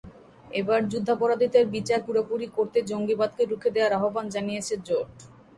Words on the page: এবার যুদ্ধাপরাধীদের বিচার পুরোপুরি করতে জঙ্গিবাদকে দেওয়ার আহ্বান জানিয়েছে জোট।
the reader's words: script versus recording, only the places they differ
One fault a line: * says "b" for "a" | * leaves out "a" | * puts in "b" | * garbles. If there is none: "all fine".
* puts in "রুখে"